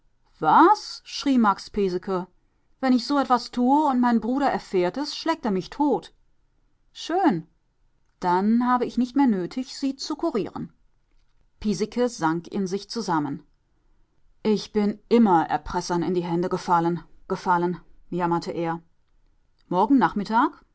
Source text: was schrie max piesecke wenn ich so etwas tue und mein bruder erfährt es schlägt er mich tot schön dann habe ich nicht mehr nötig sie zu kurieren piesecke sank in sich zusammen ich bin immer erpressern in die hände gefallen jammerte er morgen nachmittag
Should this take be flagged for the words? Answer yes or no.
yes